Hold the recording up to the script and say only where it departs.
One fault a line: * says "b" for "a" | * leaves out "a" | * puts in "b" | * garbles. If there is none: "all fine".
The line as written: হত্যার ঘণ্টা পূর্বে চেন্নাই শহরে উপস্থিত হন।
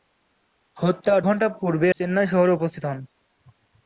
all fine